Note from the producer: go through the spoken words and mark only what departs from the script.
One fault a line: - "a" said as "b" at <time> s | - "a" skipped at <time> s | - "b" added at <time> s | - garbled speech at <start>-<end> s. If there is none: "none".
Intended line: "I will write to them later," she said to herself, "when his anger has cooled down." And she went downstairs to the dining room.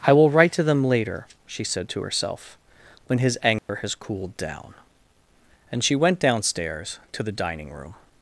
none